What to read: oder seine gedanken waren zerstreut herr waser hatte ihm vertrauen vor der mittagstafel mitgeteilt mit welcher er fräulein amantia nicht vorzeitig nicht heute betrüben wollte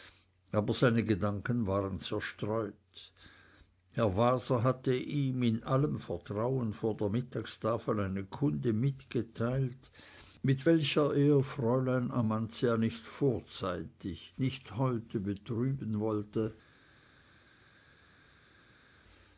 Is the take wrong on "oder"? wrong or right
wrong